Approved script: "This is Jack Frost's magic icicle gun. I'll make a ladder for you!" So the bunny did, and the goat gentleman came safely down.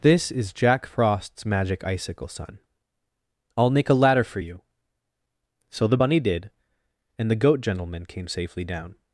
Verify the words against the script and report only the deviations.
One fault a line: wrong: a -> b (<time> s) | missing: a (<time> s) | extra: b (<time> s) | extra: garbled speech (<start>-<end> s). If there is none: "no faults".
wrong: gun -> sun (2.3 s)